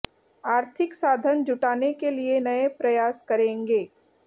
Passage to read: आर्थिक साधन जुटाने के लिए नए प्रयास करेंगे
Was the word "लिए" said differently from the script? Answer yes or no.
no